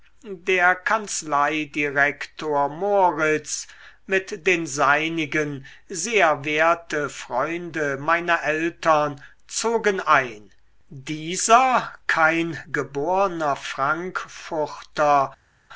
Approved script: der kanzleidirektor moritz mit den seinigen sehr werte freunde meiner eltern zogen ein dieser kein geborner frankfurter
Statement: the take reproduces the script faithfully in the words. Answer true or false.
true